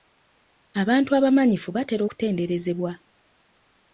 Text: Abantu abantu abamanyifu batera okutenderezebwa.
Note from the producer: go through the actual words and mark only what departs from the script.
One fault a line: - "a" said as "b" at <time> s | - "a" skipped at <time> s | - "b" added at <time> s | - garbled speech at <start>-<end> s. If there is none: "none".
- "abantu" skipped at 1.1 s